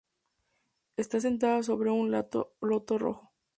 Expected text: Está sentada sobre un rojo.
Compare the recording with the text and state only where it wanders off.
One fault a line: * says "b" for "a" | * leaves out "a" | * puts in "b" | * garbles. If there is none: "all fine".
* puts in "loto"